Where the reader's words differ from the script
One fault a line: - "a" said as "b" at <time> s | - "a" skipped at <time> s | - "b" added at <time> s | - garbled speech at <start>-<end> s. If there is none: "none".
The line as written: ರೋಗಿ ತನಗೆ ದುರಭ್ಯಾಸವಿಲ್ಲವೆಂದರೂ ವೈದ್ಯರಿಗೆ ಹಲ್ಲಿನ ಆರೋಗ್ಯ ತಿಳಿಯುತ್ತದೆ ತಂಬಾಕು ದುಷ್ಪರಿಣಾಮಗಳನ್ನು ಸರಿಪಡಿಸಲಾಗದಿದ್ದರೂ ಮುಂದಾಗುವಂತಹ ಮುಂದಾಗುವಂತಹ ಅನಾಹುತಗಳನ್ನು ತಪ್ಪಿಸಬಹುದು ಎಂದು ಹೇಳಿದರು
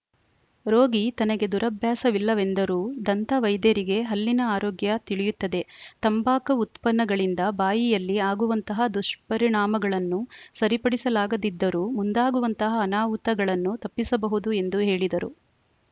- "ದಂತ" added at 3.1 s
- "ಉತ್ಪನ್ನಗಳಿಂದ ಬಾಯಿಯಲ್ಲಿ ಆಗುವಂತಹ" added at 6.6 s
- "ಮುಂದಾಗುವಂತಹ" skipped at 12.8 s